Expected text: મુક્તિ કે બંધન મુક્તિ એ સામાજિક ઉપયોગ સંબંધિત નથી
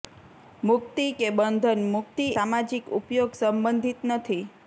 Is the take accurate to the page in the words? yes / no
no